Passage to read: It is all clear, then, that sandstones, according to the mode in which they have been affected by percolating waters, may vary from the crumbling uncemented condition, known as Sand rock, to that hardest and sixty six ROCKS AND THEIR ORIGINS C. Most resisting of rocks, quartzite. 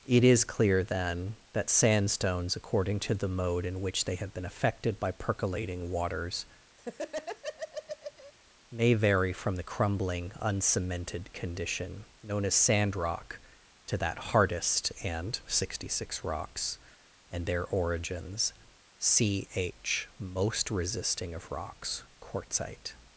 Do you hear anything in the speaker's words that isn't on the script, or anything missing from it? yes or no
yes